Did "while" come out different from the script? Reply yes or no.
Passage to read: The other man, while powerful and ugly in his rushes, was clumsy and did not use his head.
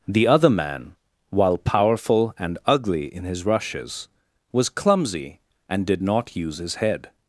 no